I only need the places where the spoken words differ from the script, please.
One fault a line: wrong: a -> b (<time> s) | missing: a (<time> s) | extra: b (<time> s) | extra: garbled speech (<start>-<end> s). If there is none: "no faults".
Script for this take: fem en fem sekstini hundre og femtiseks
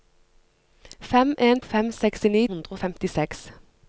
no faults